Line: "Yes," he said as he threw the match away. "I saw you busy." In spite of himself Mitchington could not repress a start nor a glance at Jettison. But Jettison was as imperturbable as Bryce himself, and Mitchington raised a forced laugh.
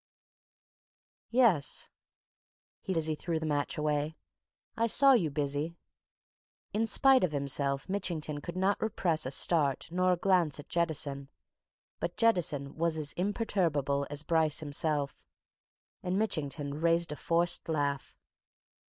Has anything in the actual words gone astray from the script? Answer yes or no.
yes